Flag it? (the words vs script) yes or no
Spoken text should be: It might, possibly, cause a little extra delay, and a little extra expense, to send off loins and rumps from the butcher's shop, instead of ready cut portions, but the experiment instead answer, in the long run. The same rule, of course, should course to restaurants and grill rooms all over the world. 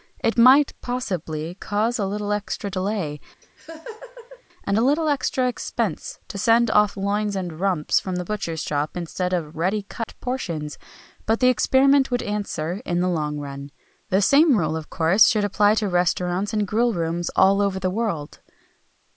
yes